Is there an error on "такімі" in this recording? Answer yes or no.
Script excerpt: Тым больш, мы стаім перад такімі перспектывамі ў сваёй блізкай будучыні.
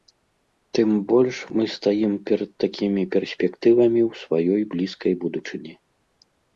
no